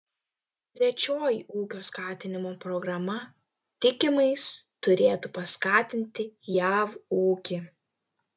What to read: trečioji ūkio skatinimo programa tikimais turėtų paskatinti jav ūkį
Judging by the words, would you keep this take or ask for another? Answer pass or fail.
pass